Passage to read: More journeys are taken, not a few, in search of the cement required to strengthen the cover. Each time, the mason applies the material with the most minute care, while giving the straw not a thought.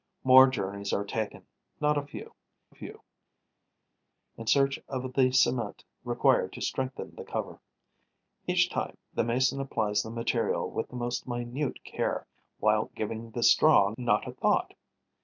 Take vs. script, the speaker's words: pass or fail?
fail